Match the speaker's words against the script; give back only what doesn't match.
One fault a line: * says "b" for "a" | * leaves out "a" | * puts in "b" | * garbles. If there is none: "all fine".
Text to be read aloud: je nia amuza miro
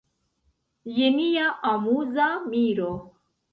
all fine